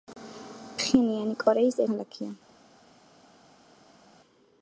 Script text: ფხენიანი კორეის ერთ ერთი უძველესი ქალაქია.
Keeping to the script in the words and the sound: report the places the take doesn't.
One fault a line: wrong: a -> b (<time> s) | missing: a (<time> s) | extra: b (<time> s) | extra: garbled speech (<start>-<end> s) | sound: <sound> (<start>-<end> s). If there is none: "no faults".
missing: ერთ ერთი უძველესი (1.8 s)